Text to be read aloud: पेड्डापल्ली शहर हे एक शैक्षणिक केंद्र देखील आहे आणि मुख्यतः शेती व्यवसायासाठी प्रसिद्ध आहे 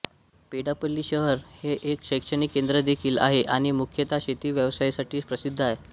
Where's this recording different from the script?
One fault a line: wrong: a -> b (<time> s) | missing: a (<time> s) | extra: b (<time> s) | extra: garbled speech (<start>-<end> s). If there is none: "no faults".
no faults